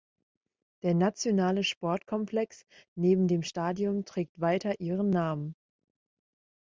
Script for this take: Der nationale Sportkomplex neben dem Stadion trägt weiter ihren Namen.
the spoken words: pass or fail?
pass